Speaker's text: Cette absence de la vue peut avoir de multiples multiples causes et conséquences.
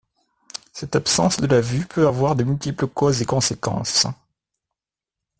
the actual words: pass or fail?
fail